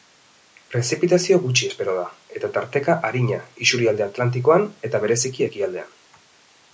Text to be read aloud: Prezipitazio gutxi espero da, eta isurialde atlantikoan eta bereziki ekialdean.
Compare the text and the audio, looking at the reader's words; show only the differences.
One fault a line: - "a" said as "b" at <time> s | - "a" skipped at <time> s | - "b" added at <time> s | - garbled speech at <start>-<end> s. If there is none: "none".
- "tarteka arina" added at 2.6 s